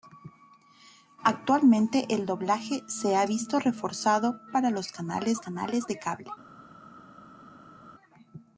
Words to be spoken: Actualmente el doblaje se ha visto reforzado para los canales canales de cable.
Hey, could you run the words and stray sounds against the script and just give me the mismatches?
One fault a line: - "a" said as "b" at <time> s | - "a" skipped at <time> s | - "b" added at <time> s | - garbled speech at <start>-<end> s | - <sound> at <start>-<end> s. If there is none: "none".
none